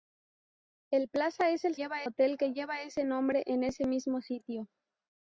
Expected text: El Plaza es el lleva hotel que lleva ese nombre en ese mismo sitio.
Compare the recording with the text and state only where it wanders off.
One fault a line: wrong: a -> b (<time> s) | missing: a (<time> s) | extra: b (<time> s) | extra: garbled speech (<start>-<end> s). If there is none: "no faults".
no faults